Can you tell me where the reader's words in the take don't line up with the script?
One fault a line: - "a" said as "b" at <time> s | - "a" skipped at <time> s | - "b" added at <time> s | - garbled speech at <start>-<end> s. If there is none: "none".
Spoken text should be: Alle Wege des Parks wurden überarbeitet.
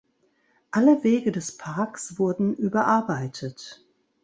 none